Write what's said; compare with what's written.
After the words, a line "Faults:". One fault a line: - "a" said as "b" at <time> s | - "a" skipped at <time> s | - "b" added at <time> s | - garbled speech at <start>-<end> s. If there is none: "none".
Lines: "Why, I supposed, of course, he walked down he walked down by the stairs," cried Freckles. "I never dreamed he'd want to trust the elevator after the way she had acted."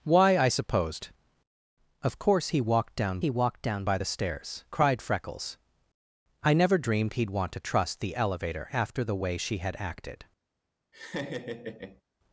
"Why, I supposed, of course, he walked down he walked down by the stairs," cried Freckles. "I never dreamed he'd want to trust the elevator after the way she had acted."
Faults:
none